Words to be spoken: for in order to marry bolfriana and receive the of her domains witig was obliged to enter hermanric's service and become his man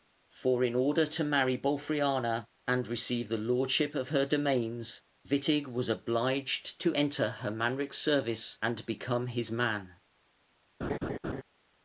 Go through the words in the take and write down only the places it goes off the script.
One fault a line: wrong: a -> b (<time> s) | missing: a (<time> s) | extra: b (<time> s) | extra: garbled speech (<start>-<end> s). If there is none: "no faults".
extra: lordship (3.4 s)